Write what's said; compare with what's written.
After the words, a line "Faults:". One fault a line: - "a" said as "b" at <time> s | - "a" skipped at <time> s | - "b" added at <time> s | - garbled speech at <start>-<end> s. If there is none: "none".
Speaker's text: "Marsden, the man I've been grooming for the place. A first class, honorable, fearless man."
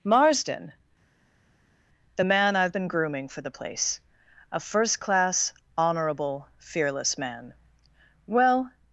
"Marsden, the man I've been grooming for the place. A first class, honorable, fearless man." "Well
Faults:
- "Well" added at 8.2 s